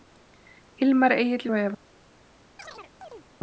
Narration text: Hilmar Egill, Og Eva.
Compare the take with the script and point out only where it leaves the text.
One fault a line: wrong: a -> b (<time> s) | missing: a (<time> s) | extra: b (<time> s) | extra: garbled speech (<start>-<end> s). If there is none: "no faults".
no faults